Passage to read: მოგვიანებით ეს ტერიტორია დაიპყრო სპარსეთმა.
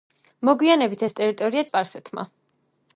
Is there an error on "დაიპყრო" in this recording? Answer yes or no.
yes